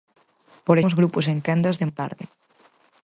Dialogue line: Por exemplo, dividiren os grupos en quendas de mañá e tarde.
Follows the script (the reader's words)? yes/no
no